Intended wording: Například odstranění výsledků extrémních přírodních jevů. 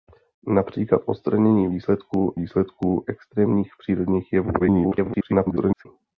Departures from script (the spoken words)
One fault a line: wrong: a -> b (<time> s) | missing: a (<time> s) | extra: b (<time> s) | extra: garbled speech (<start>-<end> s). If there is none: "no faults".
extra: výsledků (2.3 s)
extra: garbled speech (4.6-5.9 s)